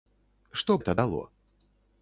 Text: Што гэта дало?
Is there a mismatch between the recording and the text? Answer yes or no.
no